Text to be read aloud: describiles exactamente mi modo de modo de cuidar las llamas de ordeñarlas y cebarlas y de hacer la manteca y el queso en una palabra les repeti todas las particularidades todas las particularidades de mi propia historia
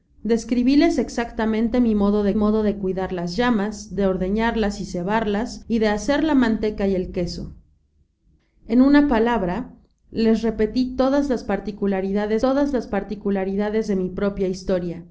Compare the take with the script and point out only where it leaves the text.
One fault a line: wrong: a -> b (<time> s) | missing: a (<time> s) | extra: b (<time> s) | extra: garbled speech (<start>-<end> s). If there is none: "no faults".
no faults